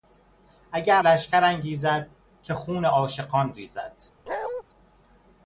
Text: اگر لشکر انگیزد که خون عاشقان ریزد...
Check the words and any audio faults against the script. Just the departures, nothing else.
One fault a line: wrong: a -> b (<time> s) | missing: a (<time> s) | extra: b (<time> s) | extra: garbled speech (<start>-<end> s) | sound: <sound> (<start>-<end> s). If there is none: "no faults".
sound: bark (4.3-4.6 s)